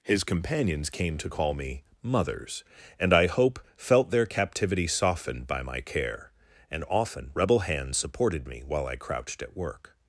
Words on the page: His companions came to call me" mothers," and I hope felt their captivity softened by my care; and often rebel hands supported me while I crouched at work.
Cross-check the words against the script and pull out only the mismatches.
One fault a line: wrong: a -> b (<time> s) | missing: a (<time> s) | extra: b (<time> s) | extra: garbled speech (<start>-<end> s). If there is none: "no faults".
no faults